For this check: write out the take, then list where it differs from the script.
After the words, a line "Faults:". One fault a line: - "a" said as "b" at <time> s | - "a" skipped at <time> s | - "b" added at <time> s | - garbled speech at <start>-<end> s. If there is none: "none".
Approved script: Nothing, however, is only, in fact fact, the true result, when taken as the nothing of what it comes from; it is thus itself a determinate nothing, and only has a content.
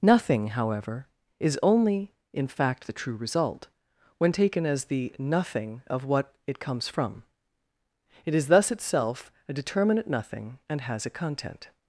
Nothing, however, is only, in fact, the true result, when taken as the nothing of what it comes from; it is thus itself a determinate nothing, and has a content.
Faults:
- "fact" skipped at 2.9 s
- "only" skipped at 10.8 s